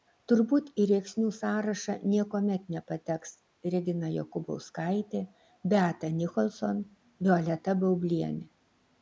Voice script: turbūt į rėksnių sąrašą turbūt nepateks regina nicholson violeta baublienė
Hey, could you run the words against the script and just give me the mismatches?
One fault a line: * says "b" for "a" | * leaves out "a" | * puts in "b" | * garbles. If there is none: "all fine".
* says "niekuomet" for "turbūt"
* puts in "jokubauskaitė beata"